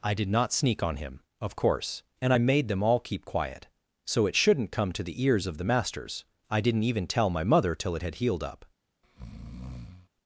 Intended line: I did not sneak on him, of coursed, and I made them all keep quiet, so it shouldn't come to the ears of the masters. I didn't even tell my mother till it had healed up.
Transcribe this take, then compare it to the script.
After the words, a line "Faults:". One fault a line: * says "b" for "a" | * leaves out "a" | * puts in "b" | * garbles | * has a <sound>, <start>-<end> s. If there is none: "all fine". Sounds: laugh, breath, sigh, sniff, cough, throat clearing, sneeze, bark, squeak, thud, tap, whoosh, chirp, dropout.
I did not sneak on him, of course, and I made them all keep quiet, so it shouldn't come to the ears of the masters. I didn't even tell my mother till it had healed up.
Faults:
* says "course" for "coursed"
* has a breath, 9.0-10.1 s